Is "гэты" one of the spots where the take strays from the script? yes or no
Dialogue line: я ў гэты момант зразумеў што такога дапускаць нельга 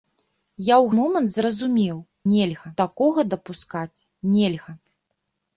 yes